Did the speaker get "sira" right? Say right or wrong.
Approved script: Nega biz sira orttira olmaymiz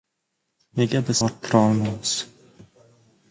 wrong